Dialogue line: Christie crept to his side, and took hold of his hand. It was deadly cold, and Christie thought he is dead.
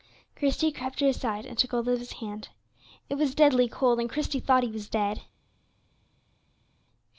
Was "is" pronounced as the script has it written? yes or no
no